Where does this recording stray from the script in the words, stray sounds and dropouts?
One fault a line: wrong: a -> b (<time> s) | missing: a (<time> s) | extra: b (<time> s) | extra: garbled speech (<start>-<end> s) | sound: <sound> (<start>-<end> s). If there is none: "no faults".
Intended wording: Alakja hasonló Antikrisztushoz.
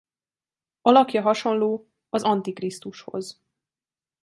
extra: az (2.1 s)